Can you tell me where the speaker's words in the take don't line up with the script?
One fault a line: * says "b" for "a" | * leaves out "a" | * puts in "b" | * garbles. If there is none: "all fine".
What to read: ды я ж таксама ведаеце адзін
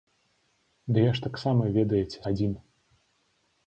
all fine